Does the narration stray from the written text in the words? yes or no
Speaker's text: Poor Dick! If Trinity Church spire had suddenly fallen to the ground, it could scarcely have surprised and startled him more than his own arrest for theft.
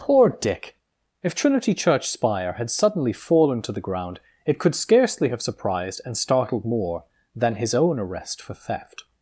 yes